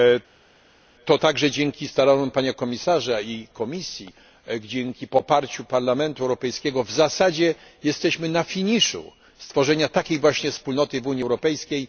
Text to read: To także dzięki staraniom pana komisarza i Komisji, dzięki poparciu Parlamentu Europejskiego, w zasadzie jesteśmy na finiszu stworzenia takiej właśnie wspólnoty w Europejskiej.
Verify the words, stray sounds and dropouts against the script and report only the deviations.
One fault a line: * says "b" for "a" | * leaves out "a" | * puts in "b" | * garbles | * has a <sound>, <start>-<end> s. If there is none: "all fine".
* puts in "Unii"